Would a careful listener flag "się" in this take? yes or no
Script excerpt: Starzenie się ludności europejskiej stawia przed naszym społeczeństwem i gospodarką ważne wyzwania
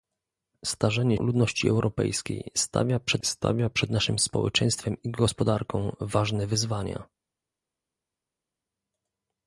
yes